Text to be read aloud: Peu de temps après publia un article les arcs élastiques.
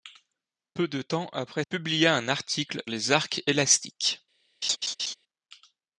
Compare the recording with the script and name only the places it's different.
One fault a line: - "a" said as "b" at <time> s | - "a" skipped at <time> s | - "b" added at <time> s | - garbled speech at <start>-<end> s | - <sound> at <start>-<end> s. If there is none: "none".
- laugh at 4.6-5.1 s